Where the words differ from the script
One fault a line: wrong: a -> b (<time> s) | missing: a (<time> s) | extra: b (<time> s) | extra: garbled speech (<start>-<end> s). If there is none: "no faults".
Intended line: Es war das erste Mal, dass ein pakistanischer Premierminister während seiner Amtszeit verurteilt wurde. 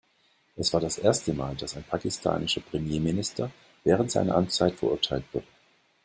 no faults